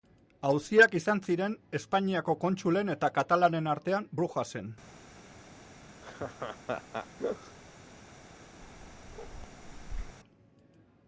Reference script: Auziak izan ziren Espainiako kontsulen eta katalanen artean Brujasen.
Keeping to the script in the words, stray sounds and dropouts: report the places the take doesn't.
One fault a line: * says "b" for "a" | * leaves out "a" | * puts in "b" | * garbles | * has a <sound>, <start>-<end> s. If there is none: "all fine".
* has a laugh, 6.0-7.6 s
* has a bark, 8.6-10.2 s